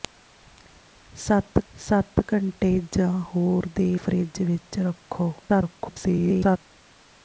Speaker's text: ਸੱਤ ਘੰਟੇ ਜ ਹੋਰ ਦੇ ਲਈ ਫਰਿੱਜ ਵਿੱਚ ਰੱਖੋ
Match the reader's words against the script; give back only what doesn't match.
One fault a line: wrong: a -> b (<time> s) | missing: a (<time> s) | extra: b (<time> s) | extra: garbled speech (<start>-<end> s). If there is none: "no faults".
extra: ਸੱਤ (1.7 s)
missing: ਲਈ (3.9 s)
extra: garbled speech (5.4-6.6 s)